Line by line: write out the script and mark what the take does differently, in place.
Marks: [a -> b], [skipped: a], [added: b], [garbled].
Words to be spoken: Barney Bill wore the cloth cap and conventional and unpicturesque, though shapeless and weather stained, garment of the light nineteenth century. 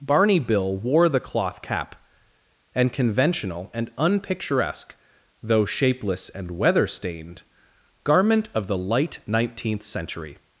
Barney Bill wore the cloth cap and conventional and unpicturesque, though shapeless and weather stained, garment of the light nineteenth century.